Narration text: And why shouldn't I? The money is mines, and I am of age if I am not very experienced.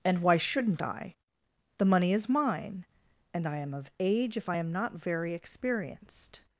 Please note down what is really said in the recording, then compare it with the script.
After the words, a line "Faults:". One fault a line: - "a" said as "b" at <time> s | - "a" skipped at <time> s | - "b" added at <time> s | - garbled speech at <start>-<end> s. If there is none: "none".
And why shouldn't I? The money is mine, and I am of age if I am not very experienced.
Faults:
- "mines" said as "mine" at 2.3 s